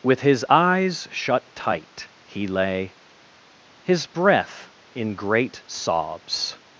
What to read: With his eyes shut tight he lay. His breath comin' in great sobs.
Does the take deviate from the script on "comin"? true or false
true